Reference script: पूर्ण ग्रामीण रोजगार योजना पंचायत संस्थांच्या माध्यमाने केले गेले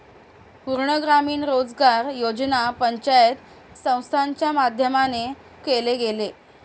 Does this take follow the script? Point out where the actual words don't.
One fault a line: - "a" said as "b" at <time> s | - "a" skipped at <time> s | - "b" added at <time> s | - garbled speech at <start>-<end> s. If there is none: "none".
none